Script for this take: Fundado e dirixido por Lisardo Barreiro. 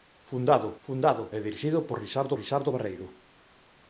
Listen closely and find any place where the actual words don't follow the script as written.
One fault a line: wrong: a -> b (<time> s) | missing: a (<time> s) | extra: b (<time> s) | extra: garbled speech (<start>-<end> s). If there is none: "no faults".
extra: fundado (0.9 s)
extra: Lisardo (2.4 s)